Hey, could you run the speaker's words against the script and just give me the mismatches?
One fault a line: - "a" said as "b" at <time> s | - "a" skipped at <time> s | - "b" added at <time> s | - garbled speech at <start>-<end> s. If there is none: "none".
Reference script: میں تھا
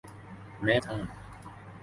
none